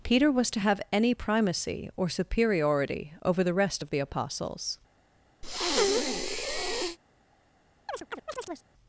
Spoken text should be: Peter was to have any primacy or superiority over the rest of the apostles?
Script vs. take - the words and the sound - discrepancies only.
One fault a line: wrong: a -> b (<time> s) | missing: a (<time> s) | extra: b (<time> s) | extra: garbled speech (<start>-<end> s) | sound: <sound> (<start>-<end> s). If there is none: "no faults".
sound: breath (5.4-7.0 s)
sound: chirp (7.9-8.7 s)